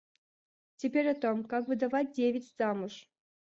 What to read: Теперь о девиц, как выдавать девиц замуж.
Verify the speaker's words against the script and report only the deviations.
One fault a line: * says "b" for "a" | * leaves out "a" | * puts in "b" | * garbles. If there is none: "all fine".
* says "том" for "девиц"